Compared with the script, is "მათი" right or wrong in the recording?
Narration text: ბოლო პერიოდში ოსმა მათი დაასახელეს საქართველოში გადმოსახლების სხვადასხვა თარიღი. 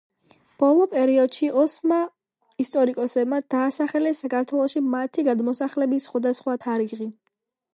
wrong